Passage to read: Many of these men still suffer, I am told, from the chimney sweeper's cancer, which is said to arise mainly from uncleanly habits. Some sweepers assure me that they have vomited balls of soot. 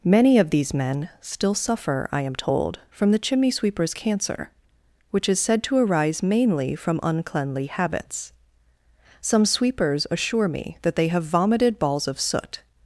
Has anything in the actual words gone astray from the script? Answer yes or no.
no